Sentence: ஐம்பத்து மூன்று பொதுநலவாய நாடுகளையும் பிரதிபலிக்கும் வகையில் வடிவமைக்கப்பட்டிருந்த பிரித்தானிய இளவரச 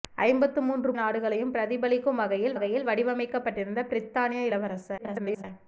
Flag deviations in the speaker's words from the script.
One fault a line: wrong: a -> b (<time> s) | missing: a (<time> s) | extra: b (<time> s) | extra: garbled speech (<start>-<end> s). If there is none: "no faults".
missing: பொதுநலவாய (0.9 s)
extra: வகையில் (2.5 s)
extra: garbled speech (5.0-5.4 s)